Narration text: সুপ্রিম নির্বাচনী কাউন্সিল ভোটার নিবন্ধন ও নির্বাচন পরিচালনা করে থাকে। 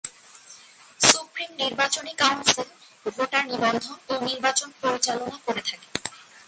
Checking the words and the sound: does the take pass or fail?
pass